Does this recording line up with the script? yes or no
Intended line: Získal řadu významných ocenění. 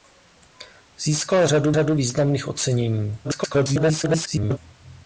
no